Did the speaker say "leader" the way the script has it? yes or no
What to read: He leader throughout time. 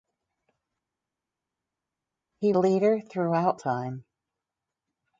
yes